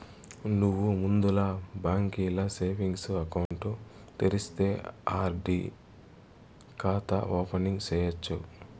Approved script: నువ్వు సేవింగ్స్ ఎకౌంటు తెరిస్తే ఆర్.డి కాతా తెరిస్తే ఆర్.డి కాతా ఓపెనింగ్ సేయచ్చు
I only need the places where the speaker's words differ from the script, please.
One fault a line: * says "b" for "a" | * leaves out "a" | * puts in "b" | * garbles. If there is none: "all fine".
* puts in "ముందల బాంకీల"
* leaves out "తెరిస్తే ఆర్.డి కాతా"